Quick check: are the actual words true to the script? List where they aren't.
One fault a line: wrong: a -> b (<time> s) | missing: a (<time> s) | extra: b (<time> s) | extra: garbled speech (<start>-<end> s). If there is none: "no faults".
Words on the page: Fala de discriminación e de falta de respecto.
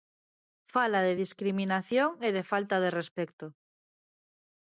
no faults